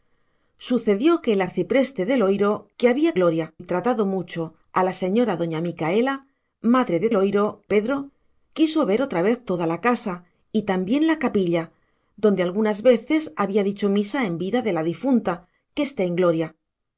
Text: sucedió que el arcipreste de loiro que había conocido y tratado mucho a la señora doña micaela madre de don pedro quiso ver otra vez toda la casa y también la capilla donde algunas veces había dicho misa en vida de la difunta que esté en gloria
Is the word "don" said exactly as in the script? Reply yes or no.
no